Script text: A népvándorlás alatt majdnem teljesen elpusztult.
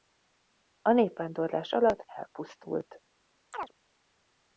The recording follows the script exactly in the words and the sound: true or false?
false